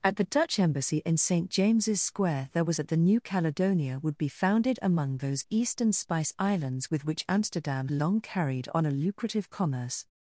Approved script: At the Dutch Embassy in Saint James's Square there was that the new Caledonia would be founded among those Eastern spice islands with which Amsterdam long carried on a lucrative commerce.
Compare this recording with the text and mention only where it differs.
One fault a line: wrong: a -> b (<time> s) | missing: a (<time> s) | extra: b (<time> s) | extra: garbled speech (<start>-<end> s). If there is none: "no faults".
no faults